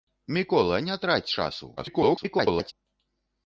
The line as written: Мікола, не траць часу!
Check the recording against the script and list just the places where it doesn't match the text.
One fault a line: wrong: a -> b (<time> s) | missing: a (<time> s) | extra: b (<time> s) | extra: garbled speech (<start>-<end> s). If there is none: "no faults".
extra: garbled speech (1.8-2.7 s)